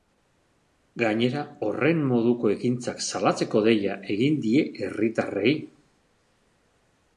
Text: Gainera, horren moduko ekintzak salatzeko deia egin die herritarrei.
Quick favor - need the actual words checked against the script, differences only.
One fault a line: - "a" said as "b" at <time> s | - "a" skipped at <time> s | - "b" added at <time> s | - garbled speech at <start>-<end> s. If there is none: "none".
none